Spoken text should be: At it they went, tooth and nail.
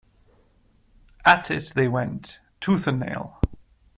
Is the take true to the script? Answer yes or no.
yes